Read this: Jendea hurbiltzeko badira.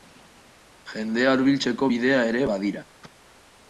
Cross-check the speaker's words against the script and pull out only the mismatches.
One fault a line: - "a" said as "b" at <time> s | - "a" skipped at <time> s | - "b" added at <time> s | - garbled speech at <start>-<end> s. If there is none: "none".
- "bidea ere" added at 1.9 s